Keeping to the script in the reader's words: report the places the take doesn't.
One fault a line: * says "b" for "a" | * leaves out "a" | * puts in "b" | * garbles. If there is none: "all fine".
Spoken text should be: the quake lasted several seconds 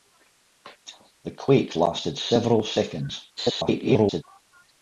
* garbles